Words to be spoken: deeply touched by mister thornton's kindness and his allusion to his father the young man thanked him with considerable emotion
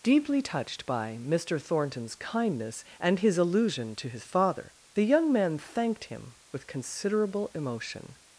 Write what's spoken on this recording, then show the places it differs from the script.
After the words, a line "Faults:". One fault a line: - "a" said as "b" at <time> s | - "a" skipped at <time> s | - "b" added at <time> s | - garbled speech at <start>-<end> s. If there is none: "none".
deeply touched by mister thornton's kindness and his allusion to his father the young man thanked him with considerable emotion
Faults:
none